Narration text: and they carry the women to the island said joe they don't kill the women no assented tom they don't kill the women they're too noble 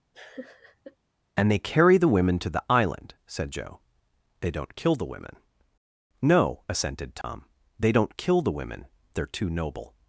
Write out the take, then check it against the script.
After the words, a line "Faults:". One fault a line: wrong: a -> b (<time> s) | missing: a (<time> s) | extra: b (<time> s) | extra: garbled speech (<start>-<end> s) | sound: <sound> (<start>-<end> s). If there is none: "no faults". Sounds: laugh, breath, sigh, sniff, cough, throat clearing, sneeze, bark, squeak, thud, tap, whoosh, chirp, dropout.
and they carry the women to the island said joe they don't kill the women no assented tom they don't kill the women they're too noble
Faults:
sound: laugh (0.1-1.0 s)
sound: dropout (7.2-7.2 s)